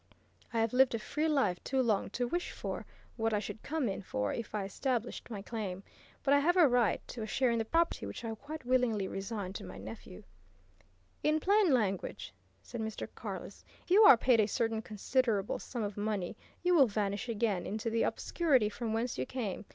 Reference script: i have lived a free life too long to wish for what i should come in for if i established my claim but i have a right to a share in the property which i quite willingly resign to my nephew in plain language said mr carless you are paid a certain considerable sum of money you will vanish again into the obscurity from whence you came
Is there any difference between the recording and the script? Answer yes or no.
no